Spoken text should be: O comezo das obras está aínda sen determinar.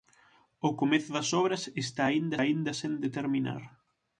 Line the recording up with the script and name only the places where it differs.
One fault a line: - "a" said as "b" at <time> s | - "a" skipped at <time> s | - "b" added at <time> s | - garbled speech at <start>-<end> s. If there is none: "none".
- "aínda" added at 2.4 s